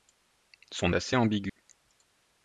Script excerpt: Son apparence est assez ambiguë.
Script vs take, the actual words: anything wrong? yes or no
yes